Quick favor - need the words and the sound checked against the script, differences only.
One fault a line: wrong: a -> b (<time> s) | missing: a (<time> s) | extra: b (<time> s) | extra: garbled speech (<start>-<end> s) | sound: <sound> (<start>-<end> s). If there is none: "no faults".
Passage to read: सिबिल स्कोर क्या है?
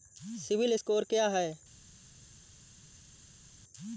no faults